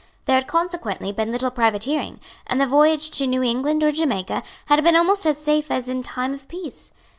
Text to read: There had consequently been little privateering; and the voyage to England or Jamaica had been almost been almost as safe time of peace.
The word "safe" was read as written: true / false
false